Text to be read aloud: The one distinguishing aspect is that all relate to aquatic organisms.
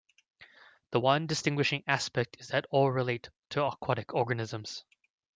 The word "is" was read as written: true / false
true